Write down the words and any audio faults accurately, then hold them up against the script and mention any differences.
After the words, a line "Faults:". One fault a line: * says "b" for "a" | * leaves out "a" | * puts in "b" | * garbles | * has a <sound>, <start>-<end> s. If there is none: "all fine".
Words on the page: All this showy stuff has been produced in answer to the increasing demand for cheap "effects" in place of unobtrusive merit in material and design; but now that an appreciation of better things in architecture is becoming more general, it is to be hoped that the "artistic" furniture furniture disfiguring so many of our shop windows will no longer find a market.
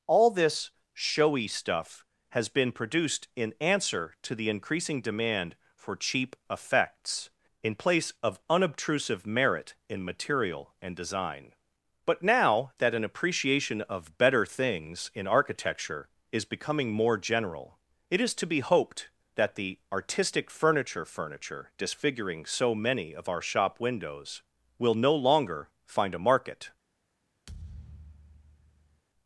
All this showy stuff has been produced in answer to the increasing demand for cheap "effects" in place of unobtrusive merit in material and design; but now that an appreciation of better things in architecture is becoming more general, it is to be hoped that the "artistic" furniture furniture disfiguring so many of our shop windows will no longer find a market.
Faults:
* has a thud, 27.5-29.0 s